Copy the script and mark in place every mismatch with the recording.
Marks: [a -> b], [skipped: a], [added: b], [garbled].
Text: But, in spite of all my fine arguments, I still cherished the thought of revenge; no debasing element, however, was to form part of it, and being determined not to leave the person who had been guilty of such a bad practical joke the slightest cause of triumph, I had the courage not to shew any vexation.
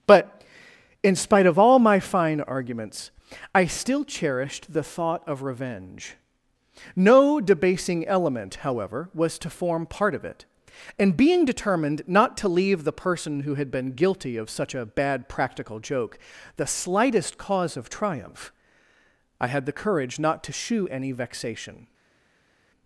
But, in spite of all my fine arguments, I still cherished the thought of revenge; no debasing element, however, was to form part of it, and being determined not to leave the person who had been guilty of such a bad practical joke the slightest cause of triumph, I had the courage not to shew any vexation.